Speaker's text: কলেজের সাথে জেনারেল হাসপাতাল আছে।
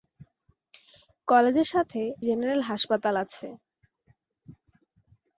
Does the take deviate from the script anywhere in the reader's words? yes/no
no